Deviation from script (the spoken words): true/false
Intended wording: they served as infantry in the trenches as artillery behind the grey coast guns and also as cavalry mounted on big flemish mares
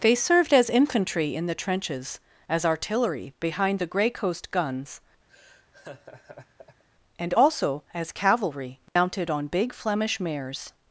false